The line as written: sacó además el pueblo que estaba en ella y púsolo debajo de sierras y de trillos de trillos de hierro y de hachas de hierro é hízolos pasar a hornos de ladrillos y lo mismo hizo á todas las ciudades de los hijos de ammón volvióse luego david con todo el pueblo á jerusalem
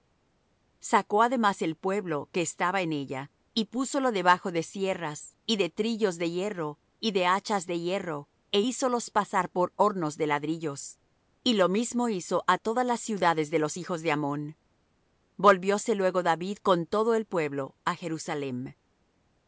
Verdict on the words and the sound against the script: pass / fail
fail